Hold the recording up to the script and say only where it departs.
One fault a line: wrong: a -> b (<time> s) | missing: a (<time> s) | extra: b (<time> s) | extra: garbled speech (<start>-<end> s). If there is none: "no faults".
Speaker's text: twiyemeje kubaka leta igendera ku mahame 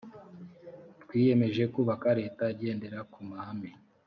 no faults